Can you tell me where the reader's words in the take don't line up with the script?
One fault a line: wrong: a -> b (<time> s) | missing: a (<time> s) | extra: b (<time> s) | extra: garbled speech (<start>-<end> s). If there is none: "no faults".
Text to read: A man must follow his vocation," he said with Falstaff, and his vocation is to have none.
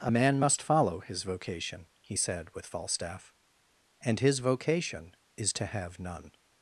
no faults